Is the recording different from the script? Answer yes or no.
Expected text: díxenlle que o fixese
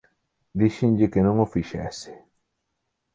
yes